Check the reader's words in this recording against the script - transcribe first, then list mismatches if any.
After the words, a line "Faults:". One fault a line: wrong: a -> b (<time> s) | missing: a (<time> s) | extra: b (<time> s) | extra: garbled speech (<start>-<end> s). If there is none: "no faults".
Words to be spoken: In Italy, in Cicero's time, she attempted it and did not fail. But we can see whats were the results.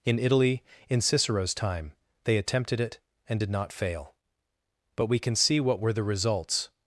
In Italy, in Cicero's time, they attempted it and did not fail. But we can see what were the results.
Faults:
wrong: she -> they (2.2 s)
wrong: whats -> what (5.6 s)